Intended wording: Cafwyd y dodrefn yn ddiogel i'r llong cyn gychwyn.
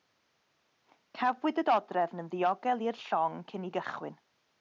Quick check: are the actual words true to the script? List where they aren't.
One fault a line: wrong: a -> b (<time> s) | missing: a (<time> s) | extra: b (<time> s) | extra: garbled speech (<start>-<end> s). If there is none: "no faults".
no faults